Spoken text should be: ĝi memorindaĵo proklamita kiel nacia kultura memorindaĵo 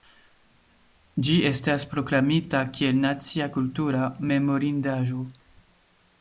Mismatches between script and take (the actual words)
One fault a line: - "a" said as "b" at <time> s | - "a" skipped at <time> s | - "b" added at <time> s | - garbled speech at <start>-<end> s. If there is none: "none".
- "memorindaĵo" said as "estas" at 1.5 s